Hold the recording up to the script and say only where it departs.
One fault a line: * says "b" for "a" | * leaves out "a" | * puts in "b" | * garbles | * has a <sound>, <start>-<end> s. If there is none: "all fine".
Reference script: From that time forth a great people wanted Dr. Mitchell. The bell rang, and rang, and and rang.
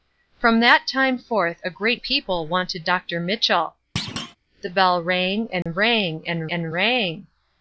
* has a thud, 4.0-4.4 s
* has a dropout, 5.6-5.7 s